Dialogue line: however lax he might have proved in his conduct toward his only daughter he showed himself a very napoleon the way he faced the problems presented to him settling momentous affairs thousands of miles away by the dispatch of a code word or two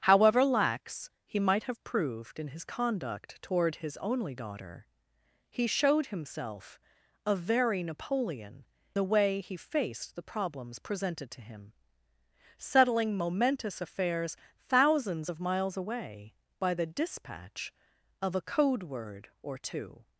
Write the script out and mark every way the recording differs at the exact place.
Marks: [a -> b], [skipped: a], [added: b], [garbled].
however lax he might have proved in his conduct toward his only daughter he showed himself a very napoleon the way he faced the problems presented to him settling momentous affairs thousands of miles away by the dispatch of a code word or two